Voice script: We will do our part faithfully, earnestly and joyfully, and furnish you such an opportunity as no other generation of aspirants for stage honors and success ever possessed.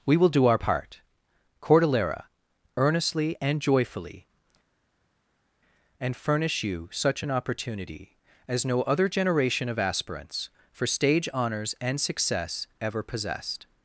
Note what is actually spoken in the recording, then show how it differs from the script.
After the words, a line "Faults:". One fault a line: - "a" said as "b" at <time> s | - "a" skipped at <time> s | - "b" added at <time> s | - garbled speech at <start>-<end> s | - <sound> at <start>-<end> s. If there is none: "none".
We will do our part cordillera, earnestly and joyfully, and furnish you such an opportunity as no other generation of aspirants for stage honors and success ever possessed.
Faults:
- "faithfully" said as "cordillera" at 1.6 s